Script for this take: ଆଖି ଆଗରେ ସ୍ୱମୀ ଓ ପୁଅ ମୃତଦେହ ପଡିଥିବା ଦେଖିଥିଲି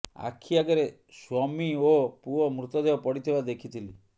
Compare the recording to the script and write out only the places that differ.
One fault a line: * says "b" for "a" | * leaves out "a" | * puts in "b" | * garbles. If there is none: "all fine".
all fine